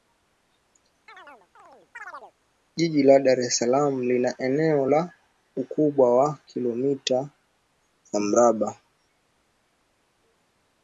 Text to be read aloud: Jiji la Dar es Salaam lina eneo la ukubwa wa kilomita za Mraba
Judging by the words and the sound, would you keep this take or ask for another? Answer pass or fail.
fail